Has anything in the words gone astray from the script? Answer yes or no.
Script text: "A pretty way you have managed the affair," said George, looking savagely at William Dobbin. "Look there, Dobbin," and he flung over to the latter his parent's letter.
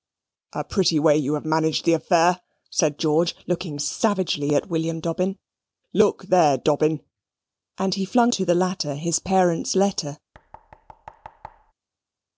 yes